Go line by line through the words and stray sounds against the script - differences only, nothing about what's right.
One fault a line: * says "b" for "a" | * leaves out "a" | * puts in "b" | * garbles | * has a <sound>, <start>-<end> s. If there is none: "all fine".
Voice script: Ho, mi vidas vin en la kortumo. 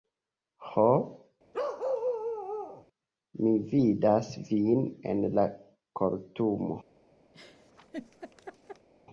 * has a bark, 1.5-2.9 s
* has a laugh, 7.3-8.9 s